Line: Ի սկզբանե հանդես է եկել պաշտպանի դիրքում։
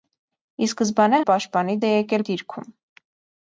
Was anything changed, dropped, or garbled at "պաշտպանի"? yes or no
yes